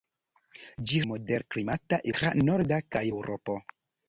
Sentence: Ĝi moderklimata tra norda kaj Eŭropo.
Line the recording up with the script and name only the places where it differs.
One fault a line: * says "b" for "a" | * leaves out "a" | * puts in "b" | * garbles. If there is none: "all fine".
all fine